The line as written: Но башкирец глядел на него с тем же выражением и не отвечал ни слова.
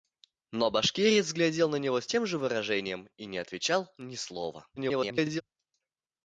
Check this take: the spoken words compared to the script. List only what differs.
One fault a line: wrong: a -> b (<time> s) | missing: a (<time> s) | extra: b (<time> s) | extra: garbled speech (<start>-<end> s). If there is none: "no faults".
extra: garbled speech (4.8-5.4 s)